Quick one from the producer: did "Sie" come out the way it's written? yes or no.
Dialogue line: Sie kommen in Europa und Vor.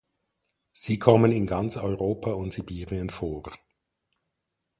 yes